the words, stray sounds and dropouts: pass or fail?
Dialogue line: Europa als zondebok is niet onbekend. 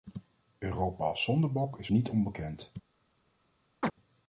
fail